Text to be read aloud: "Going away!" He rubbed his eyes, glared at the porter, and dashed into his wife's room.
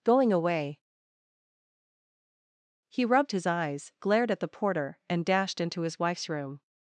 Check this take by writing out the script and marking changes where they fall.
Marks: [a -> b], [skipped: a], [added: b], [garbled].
"Going away!" He rubbed his eyes, glared at the porter, and dashed into his wife's room.